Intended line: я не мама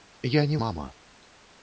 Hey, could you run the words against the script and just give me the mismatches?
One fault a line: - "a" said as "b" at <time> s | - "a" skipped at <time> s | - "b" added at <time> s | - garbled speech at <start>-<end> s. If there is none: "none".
none